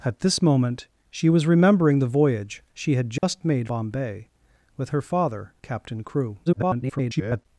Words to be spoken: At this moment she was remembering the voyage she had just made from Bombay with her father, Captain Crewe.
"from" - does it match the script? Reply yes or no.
no